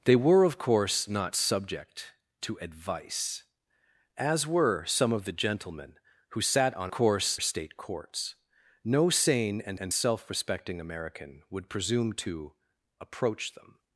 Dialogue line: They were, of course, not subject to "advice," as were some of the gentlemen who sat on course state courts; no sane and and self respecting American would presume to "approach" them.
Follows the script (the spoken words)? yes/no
yes